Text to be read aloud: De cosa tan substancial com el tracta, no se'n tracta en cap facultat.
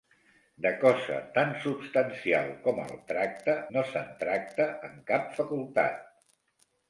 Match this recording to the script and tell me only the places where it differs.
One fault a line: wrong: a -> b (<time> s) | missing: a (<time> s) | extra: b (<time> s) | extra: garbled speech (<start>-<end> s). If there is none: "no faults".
no faults